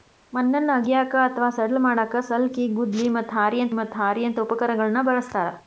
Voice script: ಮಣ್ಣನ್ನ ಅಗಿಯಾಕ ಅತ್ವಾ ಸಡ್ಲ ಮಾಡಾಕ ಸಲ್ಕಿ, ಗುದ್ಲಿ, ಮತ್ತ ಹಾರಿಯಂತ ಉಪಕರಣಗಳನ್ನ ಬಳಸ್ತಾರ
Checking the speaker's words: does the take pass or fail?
fail